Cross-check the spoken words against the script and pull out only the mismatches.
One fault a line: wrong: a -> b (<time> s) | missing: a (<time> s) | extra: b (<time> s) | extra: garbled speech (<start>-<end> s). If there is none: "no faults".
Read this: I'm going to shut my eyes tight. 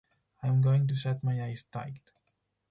no faults